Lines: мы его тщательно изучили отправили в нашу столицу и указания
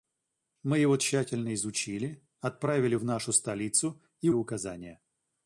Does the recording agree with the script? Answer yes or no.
yes